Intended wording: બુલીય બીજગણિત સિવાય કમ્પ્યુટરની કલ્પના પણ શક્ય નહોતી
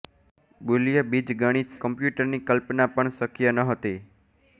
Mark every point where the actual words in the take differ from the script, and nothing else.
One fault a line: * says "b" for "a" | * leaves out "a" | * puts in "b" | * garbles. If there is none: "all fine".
* leaves out "સિવાય"